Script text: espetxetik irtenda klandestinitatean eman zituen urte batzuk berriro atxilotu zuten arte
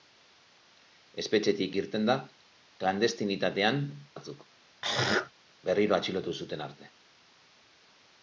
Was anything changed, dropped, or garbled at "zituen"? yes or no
yes